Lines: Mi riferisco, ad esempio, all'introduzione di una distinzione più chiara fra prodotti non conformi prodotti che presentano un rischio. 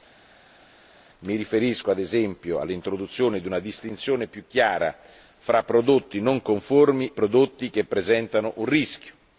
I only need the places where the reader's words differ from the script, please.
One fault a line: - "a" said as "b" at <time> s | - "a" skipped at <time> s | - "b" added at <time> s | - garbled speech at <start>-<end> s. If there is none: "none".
none